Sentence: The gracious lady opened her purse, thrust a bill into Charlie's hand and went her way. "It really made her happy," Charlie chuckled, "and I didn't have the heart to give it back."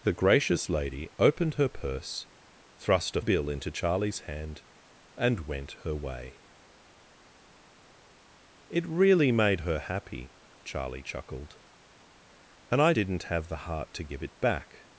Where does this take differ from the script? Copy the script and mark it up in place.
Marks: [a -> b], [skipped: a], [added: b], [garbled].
The gracious lady opened her purse, thrust a bill into Charlie's hand and went her way. "It really made her happy," Charlie chuckled, "and I didn't have the heart to give it back."